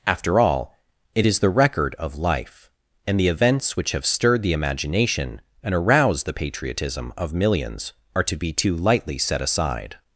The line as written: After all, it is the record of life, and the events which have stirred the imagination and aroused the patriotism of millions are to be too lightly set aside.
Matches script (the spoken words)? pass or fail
pass